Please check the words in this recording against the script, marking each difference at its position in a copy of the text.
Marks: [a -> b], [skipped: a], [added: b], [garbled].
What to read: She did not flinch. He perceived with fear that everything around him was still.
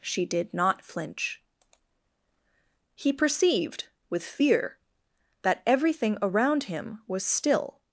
She did not flinch. He perceived with fear that everything around him was still.